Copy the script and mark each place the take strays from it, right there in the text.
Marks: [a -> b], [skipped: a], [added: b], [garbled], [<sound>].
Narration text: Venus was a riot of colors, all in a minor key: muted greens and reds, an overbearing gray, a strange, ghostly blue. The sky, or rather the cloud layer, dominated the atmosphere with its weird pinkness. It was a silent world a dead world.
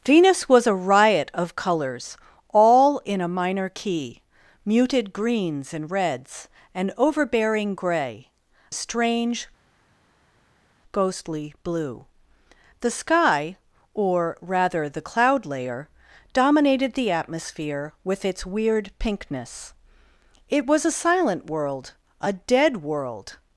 Venus was a riot of colors, all in a minor key: muted greens and reds, an overbearing gray, [skipped: a] strange, ghostly blue. The sky, or rather the cloud layer, dominated the atmosphere with its weird pinkness. It was a silent world a dead world.